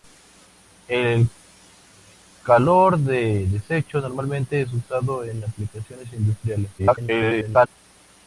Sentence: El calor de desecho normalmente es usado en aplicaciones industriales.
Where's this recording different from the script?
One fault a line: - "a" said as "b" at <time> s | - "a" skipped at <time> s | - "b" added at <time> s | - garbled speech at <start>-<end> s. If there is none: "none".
- garbled speech at 6.8-7.7 s